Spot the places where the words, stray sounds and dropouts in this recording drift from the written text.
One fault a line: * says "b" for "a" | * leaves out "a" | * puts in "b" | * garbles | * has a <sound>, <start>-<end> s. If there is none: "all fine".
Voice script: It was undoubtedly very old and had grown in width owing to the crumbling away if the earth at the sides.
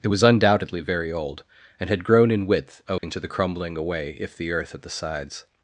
* has a dropout, 3.0-3.0 s